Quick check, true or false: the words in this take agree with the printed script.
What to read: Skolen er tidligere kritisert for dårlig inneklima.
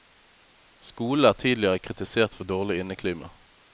true